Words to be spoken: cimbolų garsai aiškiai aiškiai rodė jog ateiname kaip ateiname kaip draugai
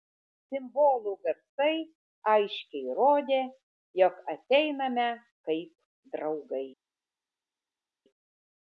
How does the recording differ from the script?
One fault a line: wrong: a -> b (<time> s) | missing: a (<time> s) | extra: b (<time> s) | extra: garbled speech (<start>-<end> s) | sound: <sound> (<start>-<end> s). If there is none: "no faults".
missing: aiškiai (3.0 s)
missing: ateiname kaip (5.8 s)